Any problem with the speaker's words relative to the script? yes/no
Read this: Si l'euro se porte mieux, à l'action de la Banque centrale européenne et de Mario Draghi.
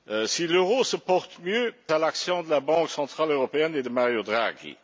no